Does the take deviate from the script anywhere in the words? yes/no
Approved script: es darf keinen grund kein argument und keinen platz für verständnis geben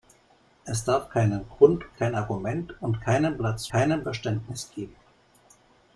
yes